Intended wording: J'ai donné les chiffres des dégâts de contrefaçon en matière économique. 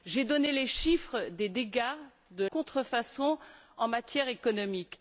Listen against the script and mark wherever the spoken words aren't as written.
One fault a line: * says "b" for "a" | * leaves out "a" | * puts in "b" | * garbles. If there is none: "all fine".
all fine